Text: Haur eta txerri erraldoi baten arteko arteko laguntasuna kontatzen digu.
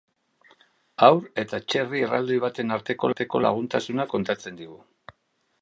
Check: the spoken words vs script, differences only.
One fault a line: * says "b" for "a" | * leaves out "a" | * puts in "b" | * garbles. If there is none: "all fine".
all fine